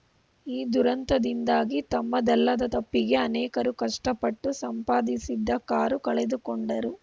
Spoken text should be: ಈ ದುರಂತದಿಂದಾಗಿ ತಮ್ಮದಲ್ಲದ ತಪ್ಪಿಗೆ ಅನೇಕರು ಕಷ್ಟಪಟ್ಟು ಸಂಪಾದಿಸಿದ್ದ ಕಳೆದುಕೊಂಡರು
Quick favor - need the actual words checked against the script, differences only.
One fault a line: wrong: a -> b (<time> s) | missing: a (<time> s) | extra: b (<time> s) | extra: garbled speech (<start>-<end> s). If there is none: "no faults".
extra: ಕಾರು (5.6 s)